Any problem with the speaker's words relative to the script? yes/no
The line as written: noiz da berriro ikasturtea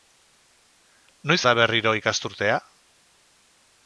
no